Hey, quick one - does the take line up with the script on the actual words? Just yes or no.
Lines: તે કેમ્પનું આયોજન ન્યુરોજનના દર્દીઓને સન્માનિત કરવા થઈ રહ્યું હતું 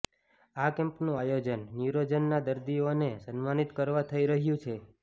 no